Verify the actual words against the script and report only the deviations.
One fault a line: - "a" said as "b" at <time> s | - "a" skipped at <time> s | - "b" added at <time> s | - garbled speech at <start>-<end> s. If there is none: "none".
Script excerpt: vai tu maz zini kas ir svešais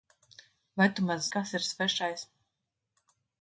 - "zini" skipped at 1.3 s